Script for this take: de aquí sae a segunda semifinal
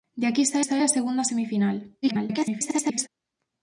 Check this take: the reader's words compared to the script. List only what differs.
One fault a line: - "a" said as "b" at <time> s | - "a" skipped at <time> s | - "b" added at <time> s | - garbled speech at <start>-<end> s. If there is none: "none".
- "sae" added at 0.6 s
- garbled speech at 2.0-3.1 s